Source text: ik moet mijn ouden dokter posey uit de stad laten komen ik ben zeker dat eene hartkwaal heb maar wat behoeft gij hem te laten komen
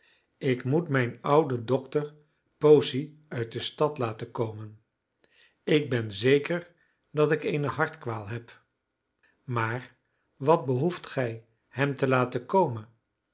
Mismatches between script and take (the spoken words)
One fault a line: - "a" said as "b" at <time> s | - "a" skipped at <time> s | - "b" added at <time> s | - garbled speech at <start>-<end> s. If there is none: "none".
- "ik" added at 7.3 s